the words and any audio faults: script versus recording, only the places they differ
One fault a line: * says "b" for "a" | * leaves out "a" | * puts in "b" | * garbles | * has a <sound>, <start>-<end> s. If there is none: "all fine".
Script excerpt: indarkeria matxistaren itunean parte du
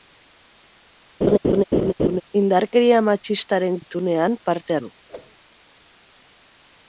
* has a laugh, 1.2-2.2 s
* has a whoosh, 5.1-5.4 s